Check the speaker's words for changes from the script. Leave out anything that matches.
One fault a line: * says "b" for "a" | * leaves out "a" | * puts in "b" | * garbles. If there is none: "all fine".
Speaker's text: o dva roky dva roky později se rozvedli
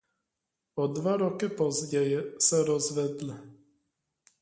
* leaves out "dva roky"